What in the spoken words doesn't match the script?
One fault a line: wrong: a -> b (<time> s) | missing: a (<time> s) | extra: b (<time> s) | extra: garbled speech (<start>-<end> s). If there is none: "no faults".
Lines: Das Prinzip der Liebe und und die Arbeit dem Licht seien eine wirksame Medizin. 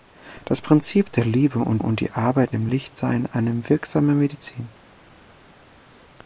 no faults